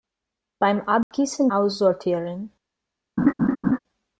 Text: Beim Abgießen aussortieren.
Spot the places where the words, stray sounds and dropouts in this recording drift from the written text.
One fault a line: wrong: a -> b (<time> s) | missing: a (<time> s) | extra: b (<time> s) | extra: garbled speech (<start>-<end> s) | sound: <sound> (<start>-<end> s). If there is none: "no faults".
sound: dropout (1.0-1.1 s)
sound: laugh (3.2-3.8 s)